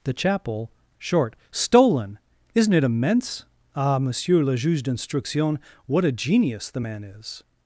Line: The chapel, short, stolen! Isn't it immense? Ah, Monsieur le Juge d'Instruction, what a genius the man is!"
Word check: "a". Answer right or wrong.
right